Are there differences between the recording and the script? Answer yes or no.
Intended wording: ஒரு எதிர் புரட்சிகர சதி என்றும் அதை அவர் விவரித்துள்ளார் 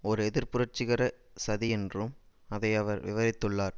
no